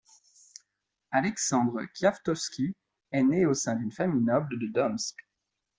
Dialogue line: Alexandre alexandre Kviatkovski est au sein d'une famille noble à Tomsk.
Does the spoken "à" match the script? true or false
false